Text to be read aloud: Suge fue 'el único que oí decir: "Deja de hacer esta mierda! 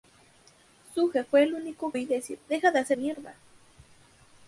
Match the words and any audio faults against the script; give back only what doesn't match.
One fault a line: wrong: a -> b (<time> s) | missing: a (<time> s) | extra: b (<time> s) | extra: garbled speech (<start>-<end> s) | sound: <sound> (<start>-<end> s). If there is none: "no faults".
missing: que (1.9 s)
missing: esta (3.0 s)